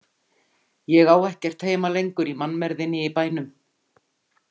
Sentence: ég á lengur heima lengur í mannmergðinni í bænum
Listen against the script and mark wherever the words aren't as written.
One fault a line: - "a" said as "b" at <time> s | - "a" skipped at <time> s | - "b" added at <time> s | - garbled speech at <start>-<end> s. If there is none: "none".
- "lengur" said as "ekkert" at 1.3 s